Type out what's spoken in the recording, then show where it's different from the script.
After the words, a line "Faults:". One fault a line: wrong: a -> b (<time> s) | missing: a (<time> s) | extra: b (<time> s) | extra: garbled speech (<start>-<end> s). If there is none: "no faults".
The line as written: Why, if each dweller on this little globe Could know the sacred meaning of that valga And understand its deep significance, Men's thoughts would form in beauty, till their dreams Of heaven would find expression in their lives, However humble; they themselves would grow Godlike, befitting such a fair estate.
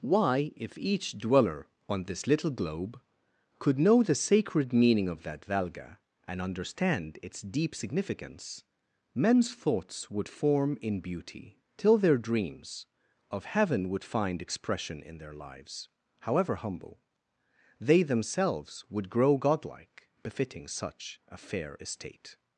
Why, if each dweller on this little globe Could know the sacred meaning of that valga And understand its deep significance, Men's thoughts would form in beauty, till their dreams Of heaven would find expression in their lives, However humble; they themselves would grow Godlike, befitting such a fair estate.
Faults:
no faults